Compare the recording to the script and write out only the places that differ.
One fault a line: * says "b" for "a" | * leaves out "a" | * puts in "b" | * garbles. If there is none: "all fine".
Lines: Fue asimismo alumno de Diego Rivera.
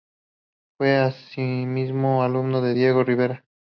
all fine